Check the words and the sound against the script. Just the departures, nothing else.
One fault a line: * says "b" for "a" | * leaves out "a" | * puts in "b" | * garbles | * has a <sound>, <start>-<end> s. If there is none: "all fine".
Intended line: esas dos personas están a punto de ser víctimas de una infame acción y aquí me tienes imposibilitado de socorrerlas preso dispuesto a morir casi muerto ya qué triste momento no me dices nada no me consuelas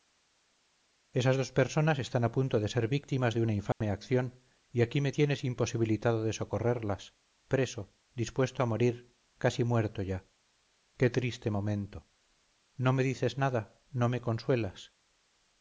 * has a dropout, 3.7-3.8 s